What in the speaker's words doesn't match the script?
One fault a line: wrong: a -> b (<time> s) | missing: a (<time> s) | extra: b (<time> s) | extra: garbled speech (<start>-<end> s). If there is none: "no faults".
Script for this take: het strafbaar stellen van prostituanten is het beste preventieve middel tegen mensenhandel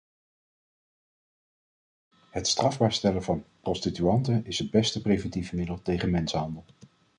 no faults